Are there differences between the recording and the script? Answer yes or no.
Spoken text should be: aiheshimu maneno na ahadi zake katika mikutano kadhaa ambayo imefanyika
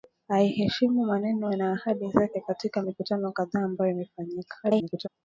yes